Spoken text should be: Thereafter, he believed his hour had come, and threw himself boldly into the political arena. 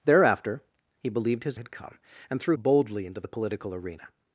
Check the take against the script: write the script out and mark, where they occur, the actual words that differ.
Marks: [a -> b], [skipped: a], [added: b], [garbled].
Thereafter, he believed his [skipped: hour] had come, and threw [skipped: himself] boldly into the political arena.